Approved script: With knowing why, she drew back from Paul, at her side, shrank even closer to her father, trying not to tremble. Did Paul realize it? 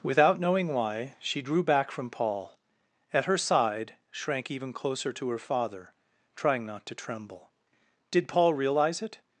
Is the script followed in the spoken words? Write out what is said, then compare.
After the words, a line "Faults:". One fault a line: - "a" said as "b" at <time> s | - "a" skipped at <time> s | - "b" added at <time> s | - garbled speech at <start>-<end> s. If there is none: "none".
Without knowing why, she drew back from Paul, at her side, shrank even closer to her father, trying not to tremble. Did Paul realize it?
Faults:
- "With" said as "Without" at 0.0 s